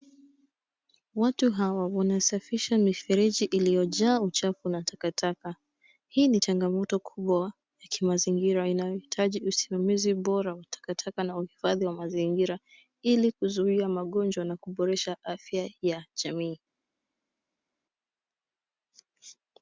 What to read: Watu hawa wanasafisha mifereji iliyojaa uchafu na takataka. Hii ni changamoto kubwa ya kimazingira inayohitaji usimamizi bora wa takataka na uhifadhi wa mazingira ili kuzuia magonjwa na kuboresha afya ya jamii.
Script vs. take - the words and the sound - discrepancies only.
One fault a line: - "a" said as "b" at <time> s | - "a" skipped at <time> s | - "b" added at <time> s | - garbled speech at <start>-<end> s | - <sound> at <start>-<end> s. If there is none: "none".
none